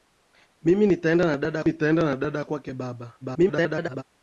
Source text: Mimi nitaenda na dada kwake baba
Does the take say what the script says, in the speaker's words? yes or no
no